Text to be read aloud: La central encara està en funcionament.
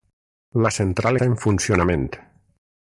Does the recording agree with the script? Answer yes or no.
no